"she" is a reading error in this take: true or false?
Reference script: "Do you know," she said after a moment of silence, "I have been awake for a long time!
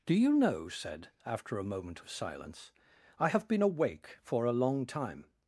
true